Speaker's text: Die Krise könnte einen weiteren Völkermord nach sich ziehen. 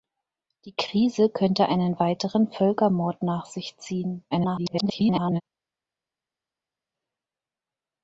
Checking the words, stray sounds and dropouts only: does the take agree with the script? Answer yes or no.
no